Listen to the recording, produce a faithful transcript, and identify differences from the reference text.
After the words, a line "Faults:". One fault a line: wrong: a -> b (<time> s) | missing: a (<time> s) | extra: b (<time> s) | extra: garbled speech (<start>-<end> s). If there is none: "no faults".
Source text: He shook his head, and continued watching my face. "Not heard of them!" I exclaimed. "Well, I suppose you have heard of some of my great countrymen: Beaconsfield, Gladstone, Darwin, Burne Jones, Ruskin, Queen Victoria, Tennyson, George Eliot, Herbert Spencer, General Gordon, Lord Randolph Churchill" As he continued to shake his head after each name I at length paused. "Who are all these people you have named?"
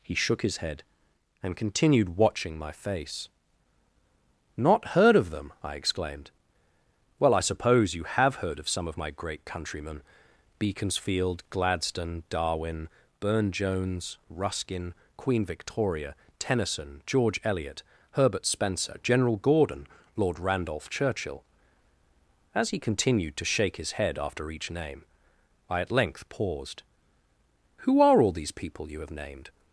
He shook his head, and continued watching my face. "Not heard of them!" I exclaimed. "Well, I suppose you have heard of some of my great countrymen: Beaconsfield, Gladstone, Darwin, Burne Jones, Ruskin, Queen Victoria, Tennyson, George Eliot, Herbert Spencer, General Gordon, Lord Randolph Churchill" As he continued to shake his head after each name I at length paused. "Who are all these people you have named?"
Faults:
no faults